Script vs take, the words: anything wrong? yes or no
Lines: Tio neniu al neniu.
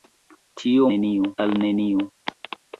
no